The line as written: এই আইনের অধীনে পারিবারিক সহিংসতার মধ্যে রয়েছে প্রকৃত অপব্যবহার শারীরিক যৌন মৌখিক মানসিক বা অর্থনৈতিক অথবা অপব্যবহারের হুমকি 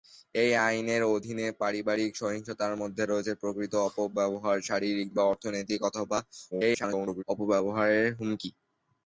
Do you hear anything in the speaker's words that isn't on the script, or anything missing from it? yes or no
yes